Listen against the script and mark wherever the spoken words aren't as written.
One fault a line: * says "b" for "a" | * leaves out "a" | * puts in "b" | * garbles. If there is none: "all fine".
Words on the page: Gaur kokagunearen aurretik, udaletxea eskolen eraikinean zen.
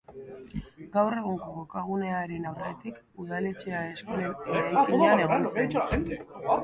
* puts in "egungo"
* puts in "egon"